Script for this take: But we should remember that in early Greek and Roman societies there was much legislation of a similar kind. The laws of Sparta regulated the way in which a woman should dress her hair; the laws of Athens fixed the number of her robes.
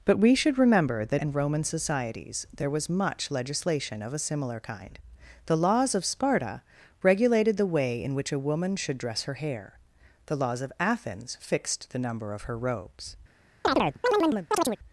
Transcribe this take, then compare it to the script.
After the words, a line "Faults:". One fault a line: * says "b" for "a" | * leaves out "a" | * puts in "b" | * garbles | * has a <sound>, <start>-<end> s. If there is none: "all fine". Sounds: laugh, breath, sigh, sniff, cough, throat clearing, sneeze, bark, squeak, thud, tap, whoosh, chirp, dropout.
But we should remember that and Roman societies there was much legislation of a similar kind. The laws of Sparta regulated the way in which a woman should dress her hair; the laws of Athens fixed the number of her robes.
Faults:
* leaves out "in early Greek"
* has a chirp, 13.6-14.8 s